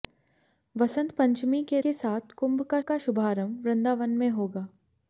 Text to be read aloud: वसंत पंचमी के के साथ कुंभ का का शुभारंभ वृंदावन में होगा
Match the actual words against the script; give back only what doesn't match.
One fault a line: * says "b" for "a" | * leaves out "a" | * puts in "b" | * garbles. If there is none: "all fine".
all fine